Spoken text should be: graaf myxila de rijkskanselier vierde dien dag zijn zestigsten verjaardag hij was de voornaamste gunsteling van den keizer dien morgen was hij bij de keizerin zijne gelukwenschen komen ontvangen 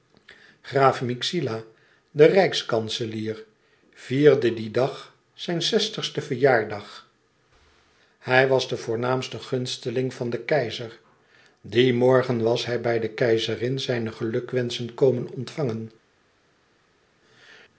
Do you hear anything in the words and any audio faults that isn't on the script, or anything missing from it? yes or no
no